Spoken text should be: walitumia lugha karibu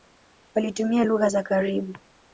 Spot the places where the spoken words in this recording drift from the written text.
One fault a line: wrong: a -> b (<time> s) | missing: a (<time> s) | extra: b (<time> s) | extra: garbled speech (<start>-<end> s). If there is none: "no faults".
extra: za (1.3 s)